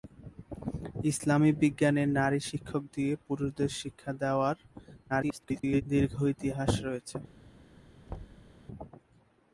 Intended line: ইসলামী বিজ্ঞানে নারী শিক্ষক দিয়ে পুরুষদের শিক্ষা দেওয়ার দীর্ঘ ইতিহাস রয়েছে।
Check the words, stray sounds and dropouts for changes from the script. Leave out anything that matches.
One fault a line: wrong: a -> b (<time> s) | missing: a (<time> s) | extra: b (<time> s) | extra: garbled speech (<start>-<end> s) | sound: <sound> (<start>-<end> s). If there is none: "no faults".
extra: garbled speech (5.1-5.8 s)
sound: thud (8.1-8.5 s)